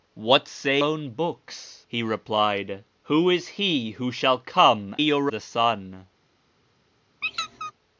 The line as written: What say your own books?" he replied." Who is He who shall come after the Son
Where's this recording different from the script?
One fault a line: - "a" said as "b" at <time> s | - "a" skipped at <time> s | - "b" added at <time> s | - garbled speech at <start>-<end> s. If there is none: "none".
- "your" skipped at 0.8 s
- "after" said as "your" at 5.0 s